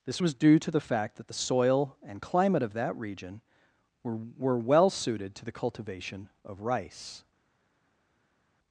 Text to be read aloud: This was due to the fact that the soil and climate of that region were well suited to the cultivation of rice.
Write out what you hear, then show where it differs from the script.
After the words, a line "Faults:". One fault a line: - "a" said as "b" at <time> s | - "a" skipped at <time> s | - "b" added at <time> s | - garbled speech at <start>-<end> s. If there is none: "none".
This was due to the fact that the soil and climate of that region were were well suited to the cultivation of rice.
Faults:
- "were" added at 4.4 s